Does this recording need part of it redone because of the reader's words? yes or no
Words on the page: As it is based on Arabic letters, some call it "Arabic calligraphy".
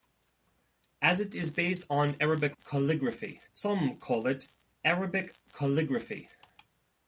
yes